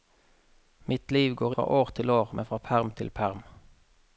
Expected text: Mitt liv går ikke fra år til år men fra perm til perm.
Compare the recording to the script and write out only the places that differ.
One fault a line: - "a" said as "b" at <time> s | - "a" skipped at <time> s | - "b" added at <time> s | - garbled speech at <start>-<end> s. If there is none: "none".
- "ikke" skipped at 1.6 s